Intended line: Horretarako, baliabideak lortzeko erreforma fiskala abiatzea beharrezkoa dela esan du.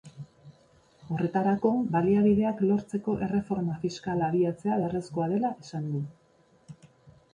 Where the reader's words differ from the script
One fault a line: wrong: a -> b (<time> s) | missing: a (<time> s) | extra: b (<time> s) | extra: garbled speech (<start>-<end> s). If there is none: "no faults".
no faults